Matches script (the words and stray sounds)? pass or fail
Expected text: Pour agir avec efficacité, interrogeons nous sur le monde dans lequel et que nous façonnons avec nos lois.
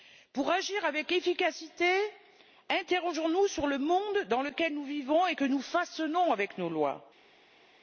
fail